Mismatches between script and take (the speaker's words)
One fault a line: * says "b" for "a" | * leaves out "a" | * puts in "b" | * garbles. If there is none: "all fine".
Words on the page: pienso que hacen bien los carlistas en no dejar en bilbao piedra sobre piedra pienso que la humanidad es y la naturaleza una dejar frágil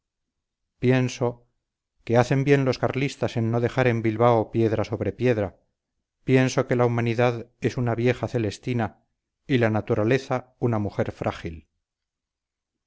* puts in "una vieja celestina"
* says "mujer" for "dejar"